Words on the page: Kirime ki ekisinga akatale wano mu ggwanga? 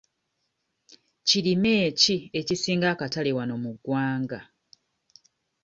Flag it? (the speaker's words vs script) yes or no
no